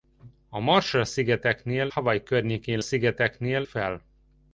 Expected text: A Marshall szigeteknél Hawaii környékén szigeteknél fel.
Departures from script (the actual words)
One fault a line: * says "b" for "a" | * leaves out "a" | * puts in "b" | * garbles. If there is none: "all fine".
all fine